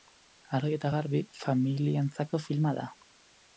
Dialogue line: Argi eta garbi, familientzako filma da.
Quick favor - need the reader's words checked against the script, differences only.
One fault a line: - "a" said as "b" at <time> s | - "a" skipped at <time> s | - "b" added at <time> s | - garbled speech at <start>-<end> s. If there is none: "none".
none